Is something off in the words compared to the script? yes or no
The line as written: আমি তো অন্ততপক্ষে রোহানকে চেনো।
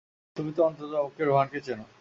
yes